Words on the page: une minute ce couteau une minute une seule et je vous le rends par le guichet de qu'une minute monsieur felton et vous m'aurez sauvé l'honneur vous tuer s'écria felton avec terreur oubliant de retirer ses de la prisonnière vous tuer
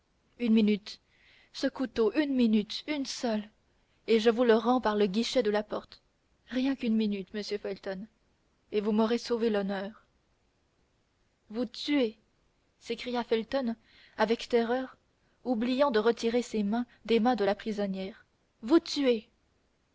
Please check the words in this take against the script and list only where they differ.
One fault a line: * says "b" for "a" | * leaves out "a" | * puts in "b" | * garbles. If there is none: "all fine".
* puts in "la porte rien"
* puts in "mains des mains"